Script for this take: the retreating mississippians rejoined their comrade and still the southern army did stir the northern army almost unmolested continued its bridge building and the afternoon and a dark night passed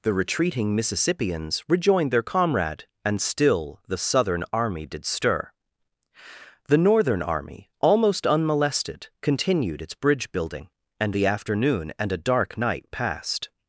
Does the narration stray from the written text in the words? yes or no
no